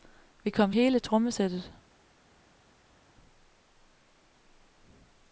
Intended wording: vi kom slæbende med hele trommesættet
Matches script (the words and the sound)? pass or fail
fail